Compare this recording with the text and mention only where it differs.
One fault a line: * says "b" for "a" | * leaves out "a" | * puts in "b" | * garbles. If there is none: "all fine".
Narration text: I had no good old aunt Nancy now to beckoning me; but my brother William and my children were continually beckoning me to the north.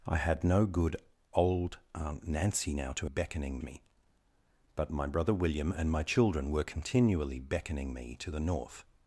all fine